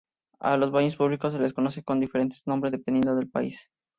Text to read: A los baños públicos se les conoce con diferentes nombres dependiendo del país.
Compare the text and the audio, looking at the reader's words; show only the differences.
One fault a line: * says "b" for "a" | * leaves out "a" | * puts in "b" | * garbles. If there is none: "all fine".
all fine